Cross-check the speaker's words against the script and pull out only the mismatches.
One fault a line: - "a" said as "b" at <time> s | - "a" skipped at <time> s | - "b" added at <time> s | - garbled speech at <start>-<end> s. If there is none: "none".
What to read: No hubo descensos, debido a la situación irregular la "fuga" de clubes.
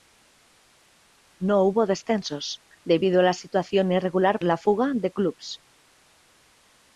none